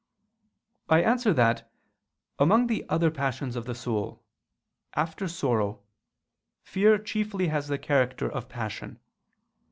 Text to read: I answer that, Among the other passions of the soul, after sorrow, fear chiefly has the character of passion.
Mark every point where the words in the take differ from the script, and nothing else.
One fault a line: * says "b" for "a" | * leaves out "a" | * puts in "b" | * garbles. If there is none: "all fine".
all fine